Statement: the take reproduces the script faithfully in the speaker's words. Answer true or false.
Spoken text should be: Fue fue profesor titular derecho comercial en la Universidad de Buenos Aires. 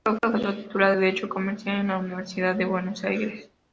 true